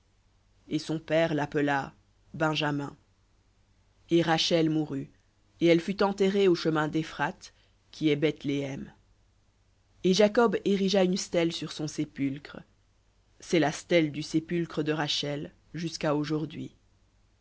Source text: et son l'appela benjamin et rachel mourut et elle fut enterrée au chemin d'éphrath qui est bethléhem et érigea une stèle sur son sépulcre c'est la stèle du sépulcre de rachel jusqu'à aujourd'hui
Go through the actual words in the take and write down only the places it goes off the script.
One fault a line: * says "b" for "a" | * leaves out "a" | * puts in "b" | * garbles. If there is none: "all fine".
* puts in "père"
* puts in "jacob"